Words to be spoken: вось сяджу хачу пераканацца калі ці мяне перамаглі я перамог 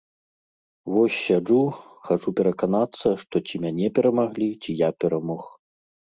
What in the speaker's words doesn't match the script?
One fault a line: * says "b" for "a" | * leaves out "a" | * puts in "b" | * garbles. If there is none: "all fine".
* says "што" for "калі"
* puts in "ці"